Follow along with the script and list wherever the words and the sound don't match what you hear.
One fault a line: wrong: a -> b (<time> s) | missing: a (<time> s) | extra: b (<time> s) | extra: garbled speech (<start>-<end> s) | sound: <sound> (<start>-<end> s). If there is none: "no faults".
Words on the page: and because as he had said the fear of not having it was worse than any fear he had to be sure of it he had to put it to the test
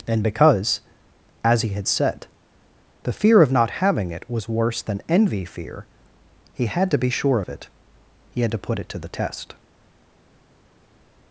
wrong: any -> envy (5.1 s)